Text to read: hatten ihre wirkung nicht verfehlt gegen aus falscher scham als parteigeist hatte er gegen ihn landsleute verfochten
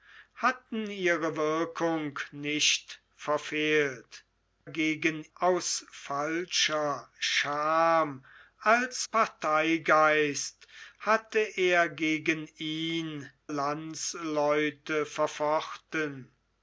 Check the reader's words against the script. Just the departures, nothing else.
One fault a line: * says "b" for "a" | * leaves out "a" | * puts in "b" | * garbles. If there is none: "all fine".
all fine